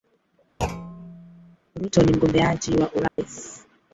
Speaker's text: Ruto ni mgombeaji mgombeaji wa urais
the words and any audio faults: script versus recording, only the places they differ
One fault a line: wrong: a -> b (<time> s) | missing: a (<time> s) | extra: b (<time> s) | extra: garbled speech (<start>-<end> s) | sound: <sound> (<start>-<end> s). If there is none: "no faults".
sound: thud (0.6-1.6 s)
missing: mgombeaji (2.8 s)
sound: dropout (3.1-3.2 s)